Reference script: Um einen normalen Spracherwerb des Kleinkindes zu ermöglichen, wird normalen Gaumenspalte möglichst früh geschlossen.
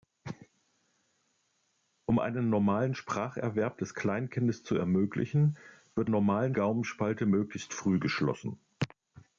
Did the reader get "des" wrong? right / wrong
right